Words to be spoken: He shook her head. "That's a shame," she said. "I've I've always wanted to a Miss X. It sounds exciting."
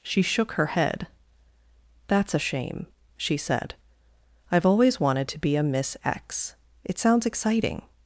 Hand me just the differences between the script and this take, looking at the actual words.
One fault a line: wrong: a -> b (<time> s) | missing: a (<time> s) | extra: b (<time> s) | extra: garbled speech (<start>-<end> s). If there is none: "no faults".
wrong: He -> She (0.0 s)
missing: I've (4.7 s)
extra: be (5.4 s)